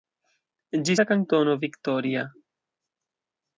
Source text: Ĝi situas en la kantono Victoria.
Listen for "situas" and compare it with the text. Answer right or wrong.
wrong